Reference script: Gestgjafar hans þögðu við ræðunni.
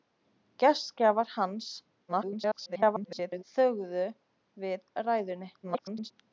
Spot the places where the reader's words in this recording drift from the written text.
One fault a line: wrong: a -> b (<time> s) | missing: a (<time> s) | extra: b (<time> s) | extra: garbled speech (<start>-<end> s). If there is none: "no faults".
extra: garbled speech (2.1-3.4 s)
extra: garbled speech (5.6-6.1 s)